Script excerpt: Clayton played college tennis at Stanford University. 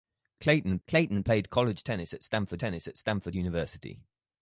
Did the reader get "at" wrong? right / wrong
right